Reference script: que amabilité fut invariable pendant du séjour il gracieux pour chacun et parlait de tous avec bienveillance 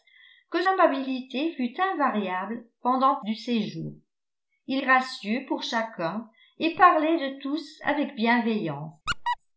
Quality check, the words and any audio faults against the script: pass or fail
fail